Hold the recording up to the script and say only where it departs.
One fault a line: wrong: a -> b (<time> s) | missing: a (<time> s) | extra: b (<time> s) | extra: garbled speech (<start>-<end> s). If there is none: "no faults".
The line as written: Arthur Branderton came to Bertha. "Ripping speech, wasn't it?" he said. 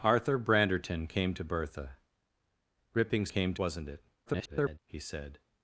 wrong: speech -> came (3.3 s)
extra: garbled speech (4.3-4.8 s)